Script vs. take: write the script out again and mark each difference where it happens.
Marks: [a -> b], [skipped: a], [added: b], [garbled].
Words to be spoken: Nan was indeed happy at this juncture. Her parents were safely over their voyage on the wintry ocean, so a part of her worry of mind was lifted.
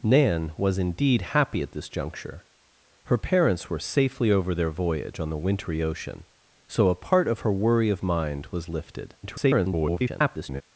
Nan was indeed happy at this juncture. Her parents were safely over their voyage on the wintry ocean, so a part of her worry of mind was lifted. [garbled]